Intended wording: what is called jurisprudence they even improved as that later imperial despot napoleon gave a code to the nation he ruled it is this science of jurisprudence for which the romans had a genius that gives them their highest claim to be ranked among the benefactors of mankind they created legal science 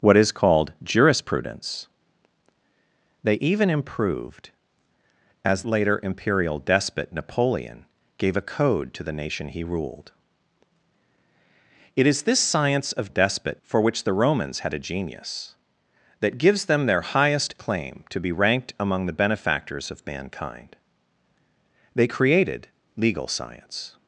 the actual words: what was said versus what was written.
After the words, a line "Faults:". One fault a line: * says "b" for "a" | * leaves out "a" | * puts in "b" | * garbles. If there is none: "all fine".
what is called jurisprudence they even improved as later imperial despot napoleon gave a code to the nation he ruled it is this science of despot for which the romans had a genius that gives them their highest claim to be ranked among the benefactors of mankind they created legal science
Faults:
* leaves out "that"
* says "despot" for "jurisprudence"